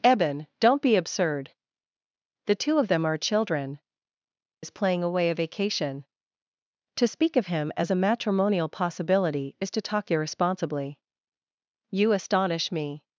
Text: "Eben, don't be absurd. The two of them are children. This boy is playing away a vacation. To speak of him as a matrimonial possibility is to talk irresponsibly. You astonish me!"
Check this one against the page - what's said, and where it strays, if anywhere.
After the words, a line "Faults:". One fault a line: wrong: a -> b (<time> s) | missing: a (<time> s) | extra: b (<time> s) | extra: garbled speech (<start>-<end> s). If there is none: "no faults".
"Eben, don't be absurd. The two of them are children. Is playing away a vacation. To speak of him as a matrimonial possibility is to talk irresponsibly. You astonish me!"
Faults:
missing: This boy (3.8 s)